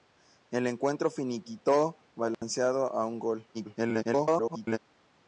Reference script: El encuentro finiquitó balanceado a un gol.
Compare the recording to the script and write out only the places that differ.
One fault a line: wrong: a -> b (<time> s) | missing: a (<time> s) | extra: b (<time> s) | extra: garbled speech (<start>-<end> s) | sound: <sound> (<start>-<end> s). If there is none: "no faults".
sound: dropout (2.3-2.4 s)
extra: garbled speech (3.5-4.8 s)